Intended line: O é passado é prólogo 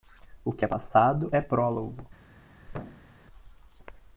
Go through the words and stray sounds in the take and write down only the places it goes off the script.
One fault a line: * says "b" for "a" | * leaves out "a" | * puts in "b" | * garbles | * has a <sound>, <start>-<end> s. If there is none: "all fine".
* puts in "que"
* has a thud, 2.7-3.2 s